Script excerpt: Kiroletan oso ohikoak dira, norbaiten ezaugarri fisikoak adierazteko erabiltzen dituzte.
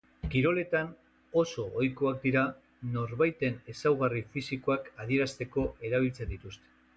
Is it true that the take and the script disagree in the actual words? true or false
false